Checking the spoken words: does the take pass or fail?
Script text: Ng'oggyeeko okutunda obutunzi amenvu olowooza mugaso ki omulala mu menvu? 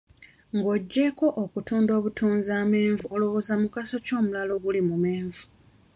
fail